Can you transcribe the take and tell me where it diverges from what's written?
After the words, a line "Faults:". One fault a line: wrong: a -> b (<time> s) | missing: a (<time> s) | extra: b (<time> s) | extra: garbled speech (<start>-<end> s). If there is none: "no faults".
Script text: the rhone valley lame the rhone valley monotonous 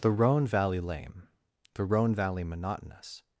the rhone valley lame the rhone valley monotonous
Faults:
no faults